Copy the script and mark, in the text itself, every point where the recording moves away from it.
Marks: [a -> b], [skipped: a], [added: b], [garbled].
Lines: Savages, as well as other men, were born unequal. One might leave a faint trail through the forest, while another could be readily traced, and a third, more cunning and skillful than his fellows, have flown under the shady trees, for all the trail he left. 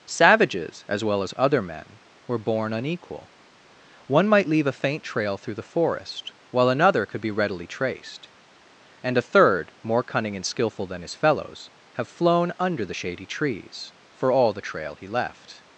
Savages, as well as other men, were born unequal. One might leave a faint trail through the forest, while another could be readily traced, and a third, more cunning and skillful than his fellows, have flown under the shady trees, for all the trail he left.